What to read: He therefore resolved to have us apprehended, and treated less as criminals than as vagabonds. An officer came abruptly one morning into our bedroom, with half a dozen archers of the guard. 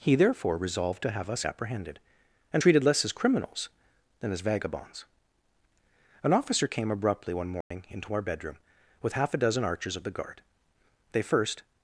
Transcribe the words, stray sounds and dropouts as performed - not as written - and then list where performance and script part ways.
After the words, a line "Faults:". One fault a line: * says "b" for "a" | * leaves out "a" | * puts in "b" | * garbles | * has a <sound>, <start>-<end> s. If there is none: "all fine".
He therefore resolved to have us apprehended, and treated less as criminals than as vagabonds. An officer came abruptly one morning into our bedroom, with half a dozen archers of the guard. They first
Faults:
* has a dropout, 7.6-7.7 s
* puts in "They first"